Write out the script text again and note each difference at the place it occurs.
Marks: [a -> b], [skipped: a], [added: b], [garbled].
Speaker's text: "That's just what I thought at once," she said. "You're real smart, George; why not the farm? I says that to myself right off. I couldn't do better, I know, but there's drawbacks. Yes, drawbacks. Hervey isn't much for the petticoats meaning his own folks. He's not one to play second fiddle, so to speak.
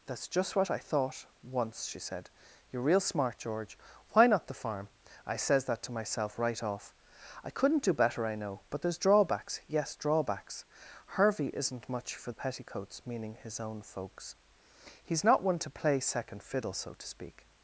"That's just what I thought [skipped: at] once," she said. "You're real smart, George; why not the farm? I says that to myself right off. I couldn't do better, I know, but there's drawbacks. Yes, drawbacks. Hervey isn't much for the petticoats meaning his own folks. He's not one to play second fiddle, so to speak.